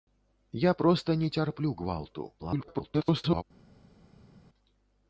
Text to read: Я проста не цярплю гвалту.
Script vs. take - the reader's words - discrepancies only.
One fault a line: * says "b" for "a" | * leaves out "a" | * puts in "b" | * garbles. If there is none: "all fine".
* garbles